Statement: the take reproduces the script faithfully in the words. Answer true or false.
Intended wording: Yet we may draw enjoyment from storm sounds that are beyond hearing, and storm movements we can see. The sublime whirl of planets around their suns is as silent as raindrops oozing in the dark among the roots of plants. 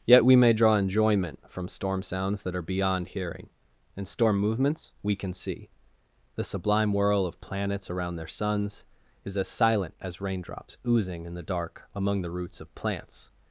true